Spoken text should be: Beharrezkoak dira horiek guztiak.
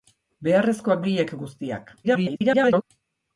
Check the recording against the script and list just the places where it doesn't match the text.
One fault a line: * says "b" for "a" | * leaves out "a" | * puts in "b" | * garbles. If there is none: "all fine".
* leaves out "dira"
* garbles